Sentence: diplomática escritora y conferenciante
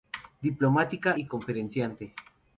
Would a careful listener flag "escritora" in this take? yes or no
yes